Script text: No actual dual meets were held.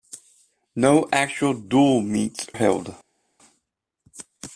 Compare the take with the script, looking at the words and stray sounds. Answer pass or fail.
fail